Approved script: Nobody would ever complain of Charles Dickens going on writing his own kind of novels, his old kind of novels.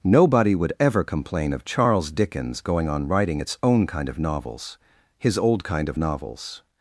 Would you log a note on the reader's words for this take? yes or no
yes